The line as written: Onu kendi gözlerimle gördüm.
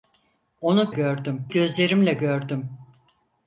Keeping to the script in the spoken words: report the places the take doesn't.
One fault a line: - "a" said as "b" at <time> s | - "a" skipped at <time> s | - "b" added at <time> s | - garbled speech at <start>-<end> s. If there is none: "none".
- "kendi" said as "gördüm" at 0.9 s